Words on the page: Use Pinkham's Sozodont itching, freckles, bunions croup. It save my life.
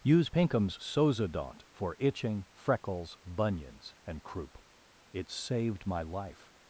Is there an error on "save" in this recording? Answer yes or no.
yes